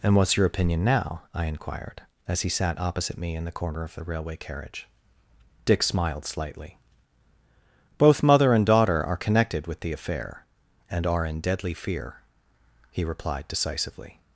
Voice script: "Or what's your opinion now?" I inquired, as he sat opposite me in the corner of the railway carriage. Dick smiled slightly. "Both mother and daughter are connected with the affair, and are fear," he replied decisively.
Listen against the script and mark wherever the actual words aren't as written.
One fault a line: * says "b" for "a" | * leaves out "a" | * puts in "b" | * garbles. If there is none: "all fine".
* says "And" for "Or"
* puts in "in deadly"